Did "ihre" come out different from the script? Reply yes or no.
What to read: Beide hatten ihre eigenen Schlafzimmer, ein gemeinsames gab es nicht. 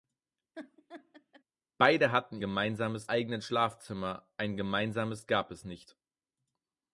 yes